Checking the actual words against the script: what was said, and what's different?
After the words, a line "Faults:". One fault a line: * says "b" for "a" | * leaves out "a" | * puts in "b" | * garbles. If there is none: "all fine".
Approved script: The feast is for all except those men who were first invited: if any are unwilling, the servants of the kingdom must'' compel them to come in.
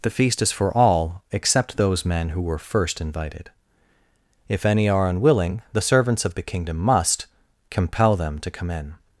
The feast is for all except those men who were first invited: if any are unwilling, the servants of the kingdom must'' compel them to come in.
Faults:
all fine